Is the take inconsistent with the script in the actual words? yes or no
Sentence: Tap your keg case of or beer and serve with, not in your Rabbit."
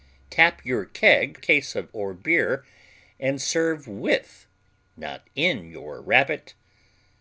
no